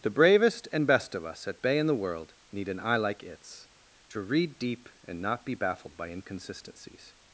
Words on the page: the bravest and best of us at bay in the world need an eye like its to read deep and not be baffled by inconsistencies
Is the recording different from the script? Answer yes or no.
no